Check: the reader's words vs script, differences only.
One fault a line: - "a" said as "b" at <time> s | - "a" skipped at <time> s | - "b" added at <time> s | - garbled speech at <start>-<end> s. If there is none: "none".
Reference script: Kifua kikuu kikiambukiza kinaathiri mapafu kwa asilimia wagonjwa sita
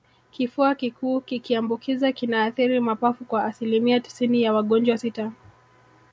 - "tisini ya" added at 4.0 s